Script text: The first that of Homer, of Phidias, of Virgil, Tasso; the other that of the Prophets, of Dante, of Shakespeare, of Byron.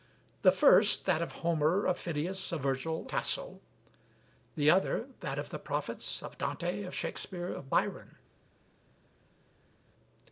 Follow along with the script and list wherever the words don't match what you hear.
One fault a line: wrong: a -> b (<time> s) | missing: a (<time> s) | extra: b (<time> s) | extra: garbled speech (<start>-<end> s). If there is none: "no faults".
no faults